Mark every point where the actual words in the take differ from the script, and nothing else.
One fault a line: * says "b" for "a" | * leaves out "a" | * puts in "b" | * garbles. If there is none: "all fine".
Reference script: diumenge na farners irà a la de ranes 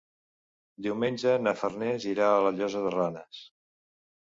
* puts in "llosa"